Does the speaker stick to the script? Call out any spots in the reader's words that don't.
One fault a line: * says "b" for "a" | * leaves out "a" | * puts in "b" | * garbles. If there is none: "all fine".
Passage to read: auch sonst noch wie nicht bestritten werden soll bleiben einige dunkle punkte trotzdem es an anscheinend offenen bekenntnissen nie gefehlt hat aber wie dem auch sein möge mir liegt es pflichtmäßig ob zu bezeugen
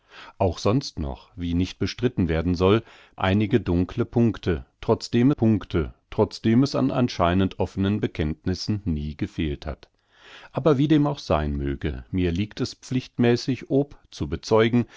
* leaves out "bleiben"
* puts in "punkte trotzdem"